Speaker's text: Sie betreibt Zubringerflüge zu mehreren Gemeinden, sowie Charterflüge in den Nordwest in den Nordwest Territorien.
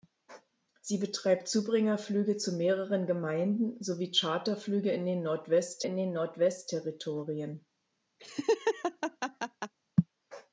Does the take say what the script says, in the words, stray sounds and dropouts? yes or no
no